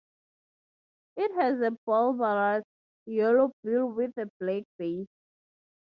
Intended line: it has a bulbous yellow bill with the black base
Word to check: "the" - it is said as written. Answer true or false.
false